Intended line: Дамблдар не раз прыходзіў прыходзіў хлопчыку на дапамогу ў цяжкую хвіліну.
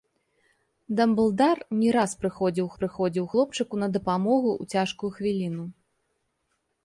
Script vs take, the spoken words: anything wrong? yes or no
no